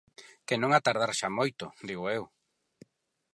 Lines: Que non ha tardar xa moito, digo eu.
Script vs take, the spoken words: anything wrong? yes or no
no